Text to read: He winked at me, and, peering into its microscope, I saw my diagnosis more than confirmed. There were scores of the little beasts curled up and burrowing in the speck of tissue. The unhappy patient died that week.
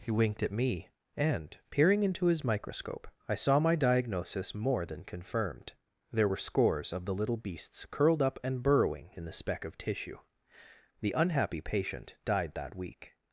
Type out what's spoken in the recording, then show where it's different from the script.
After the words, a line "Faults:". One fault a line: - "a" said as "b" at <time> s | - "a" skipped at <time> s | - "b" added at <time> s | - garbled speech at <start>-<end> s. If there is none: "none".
He winked at me, and, peering into his microscope, I saw my diagnosis more than confirmed. There were scores of the little beasts curled up and burrowing in the speck of tissue. The unhappy patient died that week.
Faults:
- "its" said as "his" at 2.2 s